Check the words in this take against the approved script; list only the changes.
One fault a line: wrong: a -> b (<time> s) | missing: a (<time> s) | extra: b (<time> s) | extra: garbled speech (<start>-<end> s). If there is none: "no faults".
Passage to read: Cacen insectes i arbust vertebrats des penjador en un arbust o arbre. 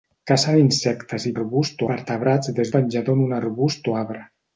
no faults